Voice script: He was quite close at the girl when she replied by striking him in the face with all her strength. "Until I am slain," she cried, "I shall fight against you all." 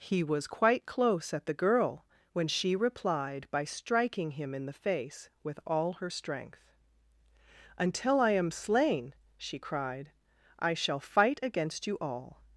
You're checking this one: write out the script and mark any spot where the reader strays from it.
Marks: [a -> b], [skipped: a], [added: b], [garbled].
He was quite close at the girl when she replied by striking him in the face with all her strength. "Until I am slain," she cried, "I shall fight against you all."